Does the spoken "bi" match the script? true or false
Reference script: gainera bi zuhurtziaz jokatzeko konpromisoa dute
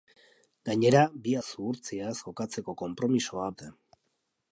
true